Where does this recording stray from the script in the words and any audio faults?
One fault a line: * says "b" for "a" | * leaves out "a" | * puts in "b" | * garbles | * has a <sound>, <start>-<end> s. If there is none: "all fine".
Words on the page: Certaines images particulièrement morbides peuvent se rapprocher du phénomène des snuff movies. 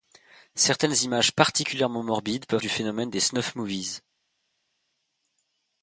* leaves out "se rapprocher"